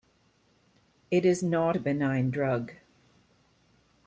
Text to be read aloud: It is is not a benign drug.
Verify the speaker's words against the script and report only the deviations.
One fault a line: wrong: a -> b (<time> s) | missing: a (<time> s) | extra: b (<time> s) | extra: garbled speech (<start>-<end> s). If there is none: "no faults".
missing: is (1.4 s)